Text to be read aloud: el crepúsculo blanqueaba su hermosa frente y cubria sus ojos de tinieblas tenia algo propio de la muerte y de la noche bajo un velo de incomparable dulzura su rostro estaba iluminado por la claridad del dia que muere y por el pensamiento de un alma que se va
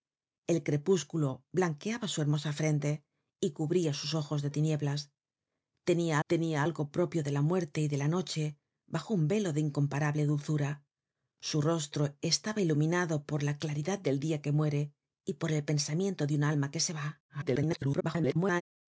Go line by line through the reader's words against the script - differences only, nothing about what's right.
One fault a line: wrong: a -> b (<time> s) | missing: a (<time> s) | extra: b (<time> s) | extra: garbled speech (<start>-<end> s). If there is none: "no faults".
extra: tenia (6.3 s)
extra: garbled speech (17.3-18.6 s)